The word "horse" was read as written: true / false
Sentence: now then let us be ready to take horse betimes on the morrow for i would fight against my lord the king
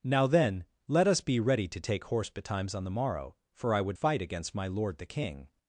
true